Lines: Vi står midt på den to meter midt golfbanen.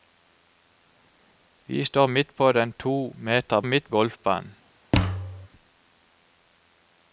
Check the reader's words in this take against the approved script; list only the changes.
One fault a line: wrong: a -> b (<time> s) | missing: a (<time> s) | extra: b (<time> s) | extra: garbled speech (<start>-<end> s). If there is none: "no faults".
no faults